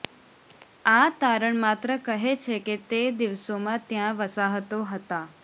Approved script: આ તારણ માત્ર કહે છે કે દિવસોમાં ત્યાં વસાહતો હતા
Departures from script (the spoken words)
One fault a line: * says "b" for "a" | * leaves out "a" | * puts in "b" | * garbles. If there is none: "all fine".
* puts in "તે"